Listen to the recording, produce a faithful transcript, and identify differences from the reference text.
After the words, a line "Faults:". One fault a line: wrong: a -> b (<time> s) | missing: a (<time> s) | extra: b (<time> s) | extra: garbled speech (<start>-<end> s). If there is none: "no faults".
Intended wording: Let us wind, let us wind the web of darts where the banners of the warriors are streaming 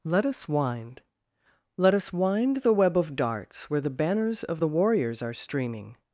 Let us wind, let us wind the web of darts where the banners of the warriors are streaming
Faults:
no faults